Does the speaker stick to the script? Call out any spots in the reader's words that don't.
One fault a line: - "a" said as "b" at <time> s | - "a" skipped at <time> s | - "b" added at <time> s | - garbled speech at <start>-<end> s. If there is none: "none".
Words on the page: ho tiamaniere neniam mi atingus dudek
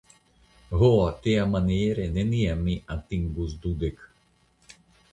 none